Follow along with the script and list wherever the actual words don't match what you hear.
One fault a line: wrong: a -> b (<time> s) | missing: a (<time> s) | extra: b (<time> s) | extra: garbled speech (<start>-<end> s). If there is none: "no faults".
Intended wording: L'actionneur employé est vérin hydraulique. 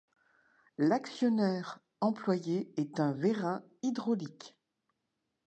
extra: un (3.0 s)